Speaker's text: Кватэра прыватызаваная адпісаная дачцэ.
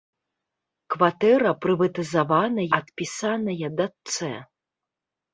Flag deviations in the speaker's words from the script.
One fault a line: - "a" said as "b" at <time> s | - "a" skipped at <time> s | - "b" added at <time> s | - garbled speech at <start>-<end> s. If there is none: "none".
none